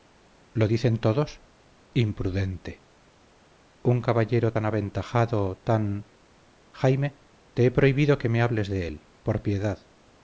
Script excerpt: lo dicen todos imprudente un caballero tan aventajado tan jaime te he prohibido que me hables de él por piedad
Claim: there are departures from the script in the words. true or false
false